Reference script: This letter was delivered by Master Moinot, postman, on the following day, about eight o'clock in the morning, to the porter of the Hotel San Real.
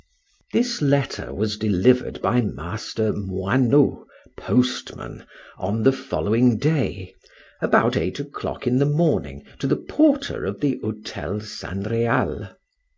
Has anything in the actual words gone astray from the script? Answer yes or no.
no